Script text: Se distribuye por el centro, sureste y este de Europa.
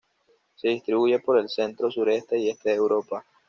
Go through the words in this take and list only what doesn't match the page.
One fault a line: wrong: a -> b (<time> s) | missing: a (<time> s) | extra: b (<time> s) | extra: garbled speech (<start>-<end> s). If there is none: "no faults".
no faults